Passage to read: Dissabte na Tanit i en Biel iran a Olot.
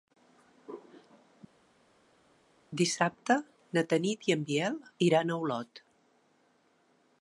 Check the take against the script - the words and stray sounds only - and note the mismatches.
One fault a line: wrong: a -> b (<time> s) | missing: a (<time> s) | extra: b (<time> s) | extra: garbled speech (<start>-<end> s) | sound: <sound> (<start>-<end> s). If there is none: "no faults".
no faults